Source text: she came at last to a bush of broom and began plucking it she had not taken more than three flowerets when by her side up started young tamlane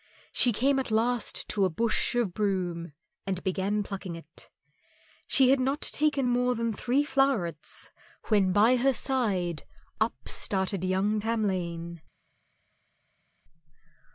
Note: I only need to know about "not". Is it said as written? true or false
true